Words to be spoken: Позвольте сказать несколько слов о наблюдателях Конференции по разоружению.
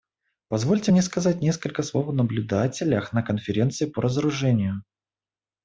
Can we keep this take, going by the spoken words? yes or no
no